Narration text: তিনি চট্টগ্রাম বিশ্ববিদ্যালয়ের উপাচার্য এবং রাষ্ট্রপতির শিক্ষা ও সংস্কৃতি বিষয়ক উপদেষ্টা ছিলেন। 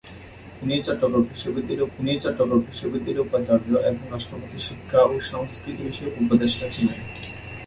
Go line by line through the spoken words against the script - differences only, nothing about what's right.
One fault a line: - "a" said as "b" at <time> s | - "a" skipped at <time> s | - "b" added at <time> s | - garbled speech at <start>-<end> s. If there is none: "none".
- "তিনি চট্টগ্রাম বিশ্ববিদ্যালয়ের" added at 1.9 s